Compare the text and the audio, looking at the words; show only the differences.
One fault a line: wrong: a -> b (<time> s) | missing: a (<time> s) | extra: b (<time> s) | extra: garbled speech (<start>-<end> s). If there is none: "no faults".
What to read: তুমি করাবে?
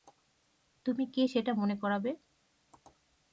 extra: কে সেটা মনে (1.1 s)